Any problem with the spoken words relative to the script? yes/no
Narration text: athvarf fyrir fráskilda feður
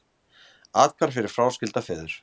no